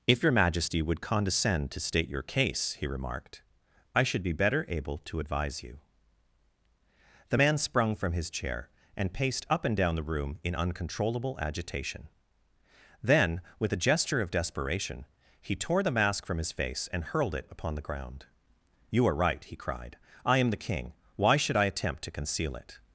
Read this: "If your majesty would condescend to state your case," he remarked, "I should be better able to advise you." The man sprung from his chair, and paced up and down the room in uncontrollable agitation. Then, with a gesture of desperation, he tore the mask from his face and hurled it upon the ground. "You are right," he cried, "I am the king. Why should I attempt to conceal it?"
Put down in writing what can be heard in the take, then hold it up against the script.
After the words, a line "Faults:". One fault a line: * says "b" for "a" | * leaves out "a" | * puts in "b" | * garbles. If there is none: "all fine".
"If your majesty would condescend to state your case," he remarked, "I should be better able to advise you." The man sprung from his chair, and paced up and down the room in uncontrollable agitation. Then, with a gesture of desperation, he tore the mask from his face and hurled it upon the ground. "You are right," he cried, "I am the king. Why should I attempt to conceal it?"
Faults:
all fine